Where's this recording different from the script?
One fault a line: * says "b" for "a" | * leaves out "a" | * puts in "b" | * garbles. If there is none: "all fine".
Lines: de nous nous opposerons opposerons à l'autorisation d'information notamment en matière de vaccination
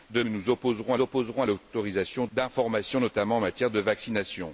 all fine